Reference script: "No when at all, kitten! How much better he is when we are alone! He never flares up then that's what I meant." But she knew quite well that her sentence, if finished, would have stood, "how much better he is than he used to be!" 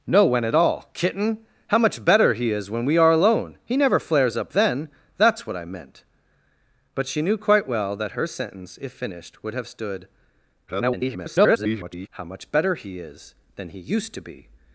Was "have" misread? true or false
false